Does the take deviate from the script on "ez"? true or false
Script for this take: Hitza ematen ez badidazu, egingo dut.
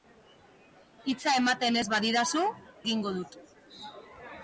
false